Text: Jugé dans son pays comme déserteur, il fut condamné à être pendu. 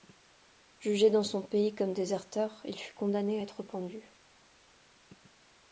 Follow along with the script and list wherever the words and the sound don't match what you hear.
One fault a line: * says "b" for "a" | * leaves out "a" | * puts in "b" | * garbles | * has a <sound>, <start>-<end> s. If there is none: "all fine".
all fine